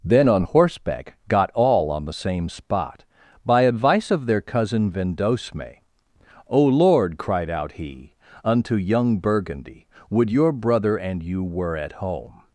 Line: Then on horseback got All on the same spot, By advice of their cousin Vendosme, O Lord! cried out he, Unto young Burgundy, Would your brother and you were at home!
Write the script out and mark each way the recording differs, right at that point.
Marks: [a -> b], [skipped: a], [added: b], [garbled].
Then on horseback got All on the same spot, By advice of their cousin Vendosme, O Lord! cried out he, Unto young Burgundy, Would your brother and you were at home!